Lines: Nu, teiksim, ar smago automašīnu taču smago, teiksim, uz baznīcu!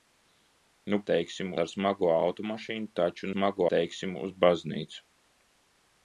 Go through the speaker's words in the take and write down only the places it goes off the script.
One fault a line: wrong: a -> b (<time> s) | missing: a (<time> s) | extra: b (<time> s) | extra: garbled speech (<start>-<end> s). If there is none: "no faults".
no faults